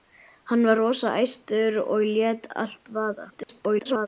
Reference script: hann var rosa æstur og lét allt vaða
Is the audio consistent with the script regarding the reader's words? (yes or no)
no